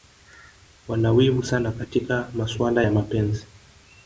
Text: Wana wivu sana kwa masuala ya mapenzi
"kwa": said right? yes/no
no